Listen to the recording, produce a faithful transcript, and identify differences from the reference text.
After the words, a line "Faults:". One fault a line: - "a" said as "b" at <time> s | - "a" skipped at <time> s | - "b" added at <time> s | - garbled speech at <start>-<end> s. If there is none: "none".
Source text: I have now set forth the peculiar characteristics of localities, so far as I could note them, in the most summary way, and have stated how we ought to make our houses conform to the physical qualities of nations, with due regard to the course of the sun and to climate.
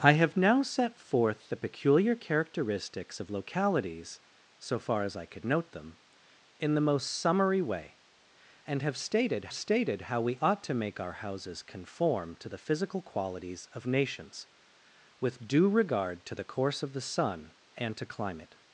I have now set forth the peculiar characteristics of localities, so far as I could note them, in the most summary way, and have stated stated how we ought to make our houses conform to the physical qualities of nations, with due regard to the course of the sun and to climate.
Faults:
- "stated" added at 9.5 s